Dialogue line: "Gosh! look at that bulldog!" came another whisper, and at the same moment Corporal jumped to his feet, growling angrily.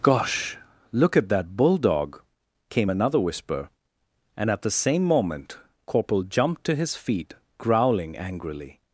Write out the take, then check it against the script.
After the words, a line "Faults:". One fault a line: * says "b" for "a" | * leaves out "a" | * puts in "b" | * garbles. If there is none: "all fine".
"Gosh! look at that bulldog!" came another whisper, and at the same moment Corporal jumped to his feet, growling angrily.
Faults:
all fine